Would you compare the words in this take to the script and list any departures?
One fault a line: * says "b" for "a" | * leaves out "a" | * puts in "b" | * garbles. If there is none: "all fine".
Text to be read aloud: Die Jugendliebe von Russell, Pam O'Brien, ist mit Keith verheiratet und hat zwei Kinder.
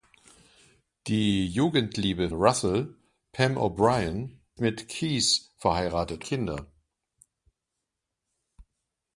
* leaves out "von"
* leaves out "ist"
* leaves out "und hat zwei"